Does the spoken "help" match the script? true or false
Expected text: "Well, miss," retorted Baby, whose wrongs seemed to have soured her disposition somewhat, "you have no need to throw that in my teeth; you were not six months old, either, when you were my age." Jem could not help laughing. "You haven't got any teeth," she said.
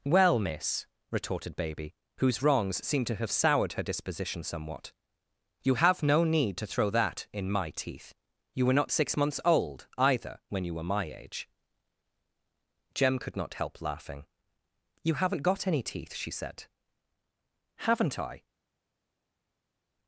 true